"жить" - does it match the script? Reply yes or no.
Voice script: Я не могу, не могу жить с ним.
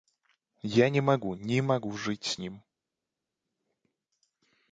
yes